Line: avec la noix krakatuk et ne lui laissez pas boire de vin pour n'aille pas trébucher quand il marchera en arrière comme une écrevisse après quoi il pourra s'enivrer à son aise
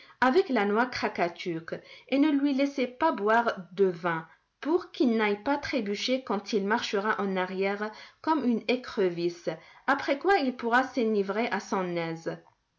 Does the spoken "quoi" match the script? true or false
true